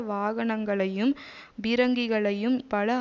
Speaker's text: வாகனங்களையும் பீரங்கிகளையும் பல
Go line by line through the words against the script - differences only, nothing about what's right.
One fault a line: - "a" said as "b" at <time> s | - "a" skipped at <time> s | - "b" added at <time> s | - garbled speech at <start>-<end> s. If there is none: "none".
none